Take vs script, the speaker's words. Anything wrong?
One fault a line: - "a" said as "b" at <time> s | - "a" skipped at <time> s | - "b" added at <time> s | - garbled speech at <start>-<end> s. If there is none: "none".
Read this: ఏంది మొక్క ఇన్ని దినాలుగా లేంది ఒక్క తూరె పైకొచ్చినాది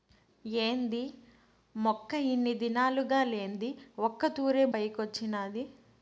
none